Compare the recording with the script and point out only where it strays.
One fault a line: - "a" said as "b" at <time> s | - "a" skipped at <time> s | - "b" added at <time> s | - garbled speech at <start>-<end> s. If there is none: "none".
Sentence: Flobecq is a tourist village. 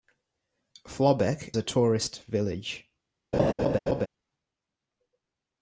- "is" skipped at 1.5 s